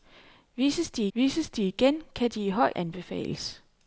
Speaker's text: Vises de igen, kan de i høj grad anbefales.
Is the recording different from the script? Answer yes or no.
yes